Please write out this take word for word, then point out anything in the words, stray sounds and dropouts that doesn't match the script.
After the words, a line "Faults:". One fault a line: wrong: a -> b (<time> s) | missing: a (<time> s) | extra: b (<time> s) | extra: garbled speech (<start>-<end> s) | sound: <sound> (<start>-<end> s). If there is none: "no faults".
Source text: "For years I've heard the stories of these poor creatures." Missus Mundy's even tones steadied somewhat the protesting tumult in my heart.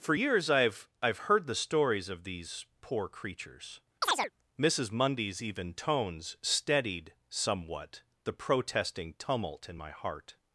"For years I've I've heard the stories of these poor creatures." Missus Mundy's even tones steadied somewhat the protesting tumult in my heart.
Faults:
extra: I've (1.0 s)
sound: chirp (4.0-4.3 s)